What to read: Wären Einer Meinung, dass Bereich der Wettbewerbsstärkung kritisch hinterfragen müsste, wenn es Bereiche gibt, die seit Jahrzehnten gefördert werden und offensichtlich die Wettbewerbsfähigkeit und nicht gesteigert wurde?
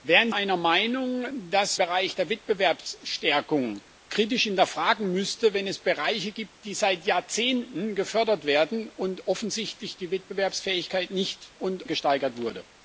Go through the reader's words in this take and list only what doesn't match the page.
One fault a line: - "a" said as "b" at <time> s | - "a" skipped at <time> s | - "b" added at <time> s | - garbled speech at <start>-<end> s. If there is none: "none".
none